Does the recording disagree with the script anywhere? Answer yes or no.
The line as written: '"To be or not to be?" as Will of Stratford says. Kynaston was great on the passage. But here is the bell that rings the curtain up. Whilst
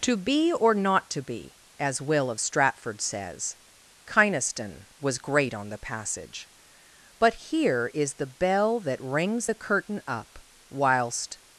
no